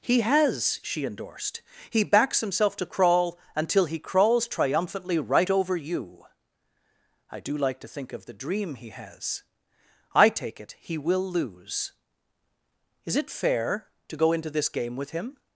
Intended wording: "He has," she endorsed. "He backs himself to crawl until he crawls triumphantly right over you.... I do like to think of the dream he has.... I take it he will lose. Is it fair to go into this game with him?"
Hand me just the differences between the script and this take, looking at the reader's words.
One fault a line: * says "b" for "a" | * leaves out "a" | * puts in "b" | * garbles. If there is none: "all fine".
all fine